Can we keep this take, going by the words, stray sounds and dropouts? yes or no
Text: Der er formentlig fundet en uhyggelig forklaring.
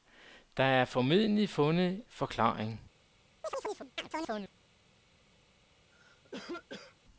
no